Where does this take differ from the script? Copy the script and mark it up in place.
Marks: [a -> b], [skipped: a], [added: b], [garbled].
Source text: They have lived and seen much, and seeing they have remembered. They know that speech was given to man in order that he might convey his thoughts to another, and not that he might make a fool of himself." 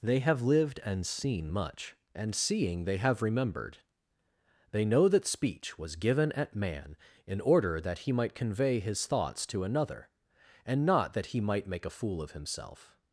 They have lived and seen much, and seeing they have remembered. They know that speech was given [to -> at] man in order that he might convey his thoughts to another, and not that he might make a fool of himself."